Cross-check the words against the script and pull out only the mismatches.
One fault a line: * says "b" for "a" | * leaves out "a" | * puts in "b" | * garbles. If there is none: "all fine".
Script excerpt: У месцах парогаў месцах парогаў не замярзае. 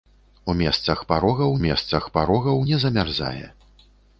all fine